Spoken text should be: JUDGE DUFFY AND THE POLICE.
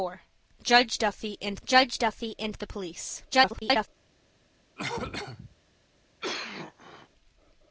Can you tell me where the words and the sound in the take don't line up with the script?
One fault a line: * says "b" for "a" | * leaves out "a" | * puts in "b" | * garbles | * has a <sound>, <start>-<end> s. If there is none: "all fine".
* puts in "judge DUFFY AND"
* garbles
* has a cough, 4.8-5.6 s
* has a cough, 6.2-7.1 s